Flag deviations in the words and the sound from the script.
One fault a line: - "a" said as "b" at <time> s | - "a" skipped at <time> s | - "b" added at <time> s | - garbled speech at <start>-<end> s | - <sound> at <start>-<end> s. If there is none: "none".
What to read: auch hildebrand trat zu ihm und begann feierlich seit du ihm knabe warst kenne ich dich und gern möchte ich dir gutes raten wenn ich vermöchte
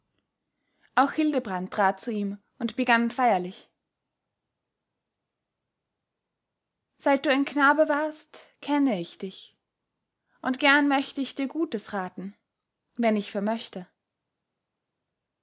- "ihm" said as "ein" at 7.3 s